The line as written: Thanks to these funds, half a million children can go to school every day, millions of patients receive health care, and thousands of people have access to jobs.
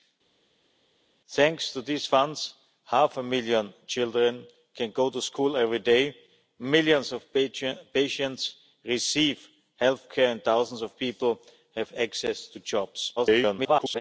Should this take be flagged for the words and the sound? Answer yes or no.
yes